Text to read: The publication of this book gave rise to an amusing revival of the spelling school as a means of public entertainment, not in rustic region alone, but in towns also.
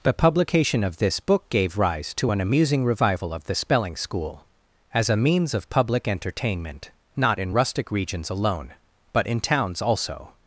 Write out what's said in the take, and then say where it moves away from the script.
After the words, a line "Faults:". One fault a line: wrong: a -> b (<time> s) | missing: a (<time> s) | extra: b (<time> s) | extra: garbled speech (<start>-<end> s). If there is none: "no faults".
The publication of this book gave rise to an amusing revival of the spelling school as a means of public entertainment, not in rustic regions alone, but in towns also.
Faults:
wrong: region -> regions (7.9 s)